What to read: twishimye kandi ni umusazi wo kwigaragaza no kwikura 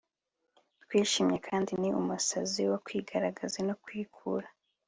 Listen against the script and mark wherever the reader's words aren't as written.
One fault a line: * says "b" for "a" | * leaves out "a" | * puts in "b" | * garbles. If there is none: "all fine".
all fine